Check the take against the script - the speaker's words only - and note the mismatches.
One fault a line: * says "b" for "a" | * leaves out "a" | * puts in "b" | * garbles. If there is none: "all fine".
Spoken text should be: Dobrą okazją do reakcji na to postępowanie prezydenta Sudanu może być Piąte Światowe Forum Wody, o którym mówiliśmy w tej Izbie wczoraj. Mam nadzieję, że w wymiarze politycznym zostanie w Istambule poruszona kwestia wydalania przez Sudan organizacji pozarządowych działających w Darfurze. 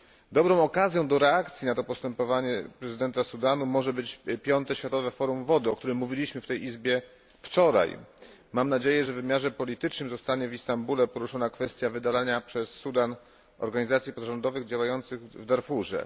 all fine